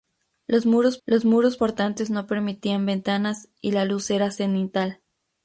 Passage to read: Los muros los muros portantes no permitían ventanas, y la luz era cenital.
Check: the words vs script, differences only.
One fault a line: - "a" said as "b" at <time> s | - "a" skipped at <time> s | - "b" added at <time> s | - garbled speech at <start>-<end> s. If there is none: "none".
none